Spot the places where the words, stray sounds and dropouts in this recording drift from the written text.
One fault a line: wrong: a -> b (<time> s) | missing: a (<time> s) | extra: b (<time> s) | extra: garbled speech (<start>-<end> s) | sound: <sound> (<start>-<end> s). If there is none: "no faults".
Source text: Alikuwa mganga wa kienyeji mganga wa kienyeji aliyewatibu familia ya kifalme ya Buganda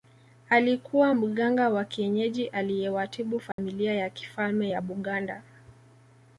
missing: mganga wa kienyeji (2.5 s)
sound: dropout (3.5-3.6 s)